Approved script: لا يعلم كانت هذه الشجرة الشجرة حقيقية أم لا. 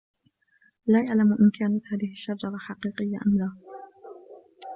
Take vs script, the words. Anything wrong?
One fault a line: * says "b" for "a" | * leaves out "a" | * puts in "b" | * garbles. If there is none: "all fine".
* puts in "إن"
* leaves out "الشجرة"